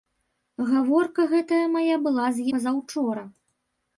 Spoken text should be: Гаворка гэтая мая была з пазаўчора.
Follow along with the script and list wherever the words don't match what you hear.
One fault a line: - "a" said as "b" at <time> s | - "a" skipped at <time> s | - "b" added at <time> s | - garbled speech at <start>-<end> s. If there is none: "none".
none